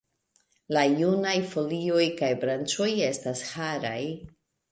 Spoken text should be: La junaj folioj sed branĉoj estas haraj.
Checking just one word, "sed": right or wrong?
wrong